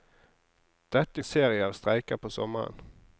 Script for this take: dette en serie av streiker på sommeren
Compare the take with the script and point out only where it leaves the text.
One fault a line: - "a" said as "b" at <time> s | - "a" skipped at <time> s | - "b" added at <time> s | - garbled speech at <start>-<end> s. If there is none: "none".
none